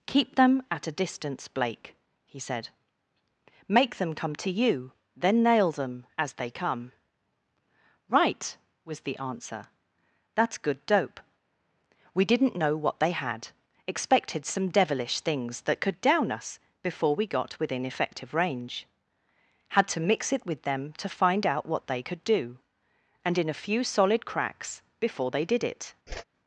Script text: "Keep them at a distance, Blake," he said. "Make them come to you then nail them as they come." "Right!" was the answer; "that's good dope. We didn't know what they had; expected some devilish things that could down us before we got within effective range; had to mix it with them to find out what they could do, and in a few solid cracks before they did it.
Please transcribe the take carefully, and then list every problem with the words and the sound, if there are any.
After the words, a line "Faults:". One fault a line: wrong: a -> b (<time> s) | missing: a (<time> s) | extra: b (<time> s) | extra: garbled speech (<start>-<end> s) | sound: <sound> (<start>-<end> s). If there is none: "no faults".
"Keep them at a distance, Blake," he said. "Make them come to you then nail them as they come." "Right!" was the answer; "that's good dope. We didn't know what they had; expected some devilish things that could down us before we got within effective range; had to mix it with them to find out what they could do, and in a few solid cracks before they did it.
Faults:
sound: whoosh (26.1-26.2 s)